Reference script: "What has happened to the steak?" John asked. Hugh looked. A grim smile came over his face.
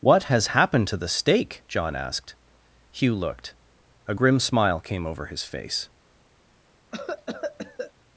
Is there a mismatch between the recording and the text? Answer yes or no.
no